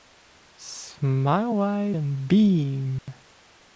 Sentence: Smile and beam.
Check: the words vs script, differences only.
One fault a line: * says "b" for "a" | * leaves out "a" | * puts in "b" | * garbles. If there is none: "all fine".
* puts in "wide"